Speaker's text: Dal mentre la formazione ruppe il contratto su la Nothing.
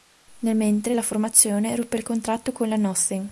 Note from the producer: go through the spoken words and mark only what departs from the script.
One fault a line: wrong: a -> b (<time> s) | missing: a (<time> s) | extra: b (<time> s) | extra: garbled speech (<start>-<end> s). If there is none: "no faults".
wrong: Dal -> Nel (0.4 s)
wrong: su -> con (2.5 s)